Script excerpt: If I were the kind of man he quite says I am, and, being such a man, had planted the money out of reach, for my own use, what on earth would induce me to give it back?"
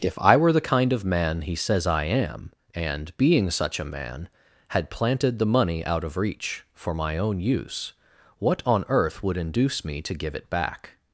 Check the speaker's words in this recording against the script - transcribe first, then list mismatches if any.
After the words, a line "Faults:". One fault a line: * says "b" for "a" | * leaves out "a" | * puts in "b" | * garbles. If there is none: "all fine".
If I were the kind of man he says I am, and, being such a man, had planted the money out of reach, for my own use, what on earth would induce me to give it back?"
Faults:
* leaves out "quite"